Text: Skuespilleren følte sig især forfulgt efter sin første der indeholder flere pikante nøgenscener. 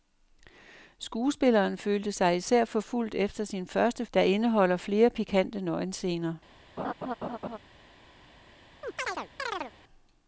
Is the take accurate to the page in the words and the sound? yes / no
no